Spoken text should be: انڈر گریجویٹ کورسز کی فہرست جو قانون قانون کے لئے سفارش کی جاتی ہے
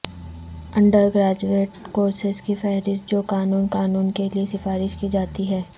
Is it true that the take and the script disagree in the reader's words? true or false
false